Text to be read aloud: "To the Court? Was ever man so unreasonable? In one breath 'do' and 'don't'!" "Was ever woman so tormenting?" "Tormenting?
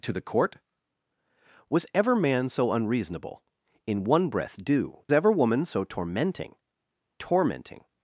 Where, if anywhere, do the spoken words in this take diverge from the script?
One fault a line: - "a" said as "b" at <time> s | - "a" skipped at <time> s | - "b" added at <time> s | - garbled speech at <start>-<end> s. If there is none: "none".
- "and don't Was" skipped at 5.0 s